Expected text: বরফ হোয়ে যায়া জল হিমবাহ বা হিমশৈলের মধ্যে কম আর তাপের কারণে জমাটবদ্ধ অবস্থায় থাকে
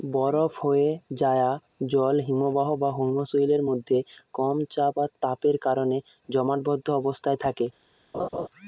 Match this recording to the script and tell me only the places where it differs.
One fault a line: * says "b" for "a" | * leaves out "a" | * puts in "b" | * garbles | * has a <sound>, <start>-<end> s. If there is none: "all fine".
* puts in "চাপ"
* has a laugh, 8.1-8.5 s